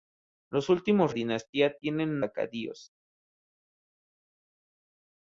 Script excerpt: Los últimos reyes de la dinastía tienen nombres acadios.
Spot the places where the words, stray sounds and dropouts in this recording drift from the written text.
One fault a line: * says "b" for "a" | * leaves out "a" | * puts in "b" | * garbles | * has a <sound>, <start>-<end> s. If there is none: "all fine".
* leaves out "reyes de la"
* leaves out "nombres"